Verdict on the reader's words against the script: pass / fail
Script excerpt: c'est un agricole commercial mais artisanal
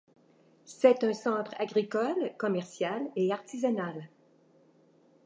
fail